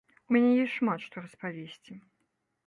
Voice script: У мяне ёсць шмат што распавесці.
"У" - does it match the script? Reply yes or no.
yes